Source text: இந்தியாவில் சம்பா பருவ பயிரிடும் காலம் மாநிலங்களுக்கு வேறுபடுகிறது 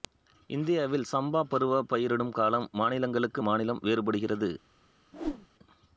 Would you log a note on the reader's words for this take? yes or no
yes